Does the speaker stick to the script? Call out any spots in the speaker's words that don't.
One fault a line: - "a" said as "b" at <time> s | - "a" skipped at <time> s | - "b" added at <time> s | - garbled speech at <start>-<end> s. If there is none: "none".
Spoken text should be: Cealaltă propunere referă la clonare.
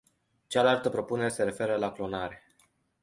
- "se" added at 1.3 s